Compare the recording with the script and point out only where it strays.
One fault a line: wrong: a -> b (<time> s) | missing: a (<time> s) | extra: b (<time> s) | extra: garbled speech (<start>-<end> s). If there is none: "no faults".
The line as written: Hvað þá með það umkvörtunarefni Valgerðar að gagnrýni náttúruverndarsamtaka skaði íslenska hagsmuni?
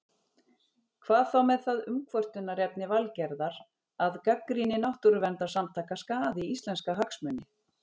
no faults